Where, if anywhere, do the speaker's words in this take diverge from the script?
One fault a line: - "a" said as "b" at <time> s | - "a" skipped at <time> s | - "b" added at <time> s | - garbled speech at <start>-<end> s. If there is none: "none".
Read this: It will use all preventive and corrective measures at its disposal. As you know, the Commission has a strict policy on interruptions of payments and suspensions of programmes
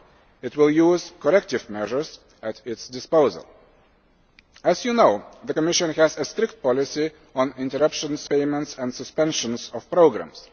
- "all preventive and" skipped at 1.1 s
- "of" skipped at 8.3 s